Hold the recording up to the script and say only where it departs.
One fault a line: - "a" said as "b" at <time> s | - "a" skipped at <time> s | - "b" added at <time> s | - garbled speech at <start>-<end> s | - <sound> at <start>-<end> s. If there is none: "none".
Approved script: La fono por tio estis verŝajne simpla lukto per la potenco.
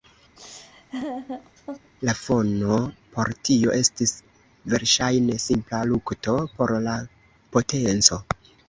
- laugh at 0.4-1.9 s
- "per" said as "por" at 6.6 s